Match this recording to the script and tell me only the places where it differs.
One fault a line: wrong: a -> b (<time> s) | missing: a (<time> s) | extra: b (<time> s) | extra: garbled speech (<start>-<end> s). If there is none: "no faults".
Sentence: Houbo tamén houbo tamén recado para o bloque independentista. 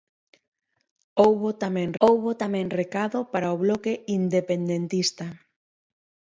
no faults